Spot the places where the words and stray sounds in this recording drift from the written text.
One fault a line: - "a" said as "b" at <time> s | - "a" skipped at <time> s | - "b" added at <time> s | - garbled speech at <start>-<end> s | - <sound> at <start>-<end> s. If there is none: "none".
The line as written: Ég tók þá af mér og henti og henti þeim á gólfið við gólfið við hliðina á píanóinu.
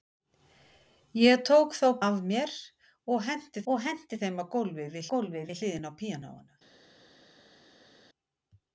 none